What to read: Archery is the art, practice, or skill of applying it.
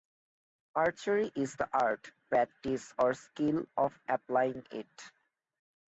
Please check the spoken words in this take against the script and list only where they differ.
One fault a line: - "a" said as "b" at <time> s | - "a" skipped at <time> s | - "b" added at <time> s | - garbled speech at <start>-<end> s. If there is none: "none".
none